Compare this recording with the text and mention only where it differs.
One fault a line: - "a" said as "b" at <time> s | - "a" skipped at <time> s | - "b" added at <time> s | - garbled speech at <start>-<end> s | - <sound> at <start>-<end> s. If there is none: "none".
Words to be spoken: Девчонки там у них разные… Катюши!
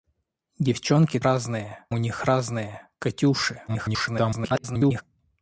- "там" said as "разные" at 1.2 s
- garbled speech at 3.7-5.0 s